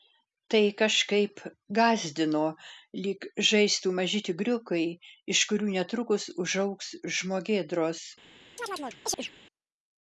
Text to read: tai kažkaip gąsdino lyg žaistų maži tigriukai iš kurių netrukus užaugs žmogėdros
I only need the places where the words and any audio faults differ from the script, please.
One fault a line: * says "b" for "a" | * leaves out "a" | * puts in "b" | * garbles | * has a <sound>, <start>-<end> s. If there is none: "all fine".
* has a chirp, 8.6-9.3 s